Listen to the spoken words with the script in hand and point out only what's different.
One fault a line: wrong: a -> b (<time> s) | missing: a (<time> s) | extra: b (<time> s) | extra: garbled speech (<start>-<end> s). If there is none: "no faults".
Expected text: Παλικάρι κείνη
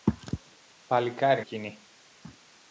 no faults